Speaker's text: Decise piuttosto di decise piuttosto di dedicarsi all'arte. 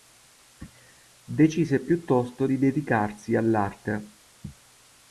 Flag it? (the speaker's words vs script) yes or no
yes